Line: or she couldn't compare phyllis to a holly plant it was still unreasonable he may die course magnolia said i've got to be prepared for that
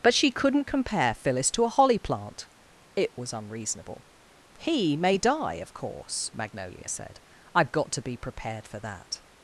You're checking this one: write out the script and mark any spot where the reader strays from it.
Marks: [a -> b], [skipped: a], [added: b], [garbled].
[or -> but] she couldn't compare phyllis to a holly plant it was [skipped: still] unreasonable he may die [added: of] course magnolia said i've got to be prepared for that